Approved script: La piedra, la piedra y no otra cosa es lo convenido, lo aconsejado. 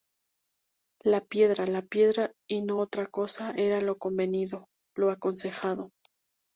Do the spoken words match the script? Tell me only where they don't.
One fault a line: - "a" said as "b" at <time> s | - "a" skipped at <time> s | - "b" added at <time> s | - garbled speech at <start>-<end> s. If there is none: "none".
- "es" said as "era" at 3.6 s